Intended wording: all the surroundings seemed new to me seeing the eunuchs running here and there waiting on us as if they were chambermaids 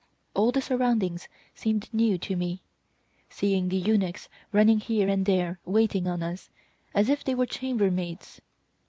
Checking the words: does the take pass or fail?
pass